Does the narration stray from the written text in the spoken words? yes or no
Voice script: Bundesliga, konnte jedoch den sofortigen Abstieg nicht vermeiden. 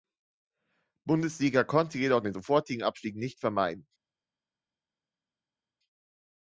no